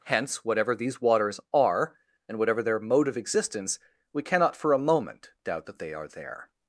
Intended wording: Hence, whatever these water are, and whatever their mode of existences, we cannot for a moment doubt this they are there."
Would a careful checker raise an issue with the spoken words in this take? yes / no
yes